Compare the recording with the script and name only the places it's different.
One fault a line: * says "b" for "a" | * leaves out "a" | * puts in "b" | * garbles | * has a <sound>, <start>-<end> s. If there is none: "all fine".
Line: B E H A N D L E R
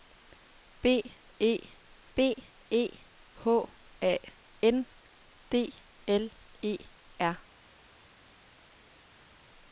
* puts in "b E"